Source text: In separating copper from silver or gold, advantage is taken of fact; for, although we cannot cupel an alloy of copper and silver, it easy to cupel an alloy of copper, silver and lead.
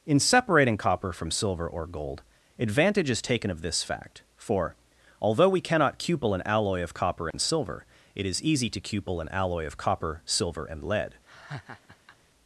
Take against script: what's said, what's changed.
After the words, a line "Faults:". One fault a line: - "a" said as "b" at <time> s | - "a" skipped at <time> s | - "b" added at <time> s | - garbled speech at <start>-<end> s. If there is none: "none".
In separating copper from silver or gold, advantage is taken of this fact; for, although we cannot cupel an alloy of copper and silver, it is easy to cupel an alloy of copper, silver and lead.
Faults:
- "this" added at 3.6 s
- "is" added at 8.2 s